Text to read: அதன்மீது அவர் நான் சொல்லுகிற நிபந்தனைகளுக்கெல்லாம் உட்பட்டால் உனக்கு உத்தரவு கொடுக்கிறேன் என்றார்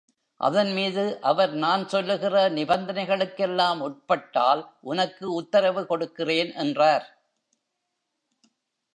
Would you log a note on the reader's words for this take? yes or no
no